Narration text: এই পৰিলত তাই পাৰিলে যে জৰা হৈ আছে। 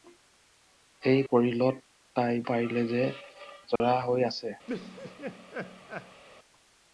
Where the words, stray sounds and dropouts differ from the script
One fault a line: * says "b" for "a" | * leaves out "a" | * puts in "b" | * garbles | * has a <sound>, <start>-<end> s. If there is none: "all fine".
* has a dropout, 3.8-3.8 s
* has a laugh, 4.7-6.2 s